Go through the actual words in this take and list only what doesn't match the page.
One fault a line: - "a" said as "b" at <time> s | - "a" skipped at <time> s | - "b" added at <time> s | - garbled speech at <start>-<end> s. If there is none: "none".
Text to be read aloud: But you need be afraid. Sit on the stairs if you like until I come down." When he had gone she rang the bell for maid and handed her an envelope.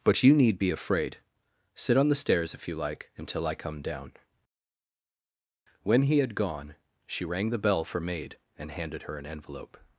none